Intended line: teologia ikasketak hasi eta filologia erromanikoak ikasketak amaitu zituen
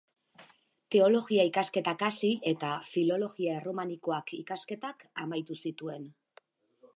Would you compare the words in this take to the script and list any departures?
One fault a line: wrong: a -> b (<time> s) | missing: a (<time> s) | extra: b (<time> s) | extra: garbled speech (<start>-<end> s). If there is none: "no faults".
no faults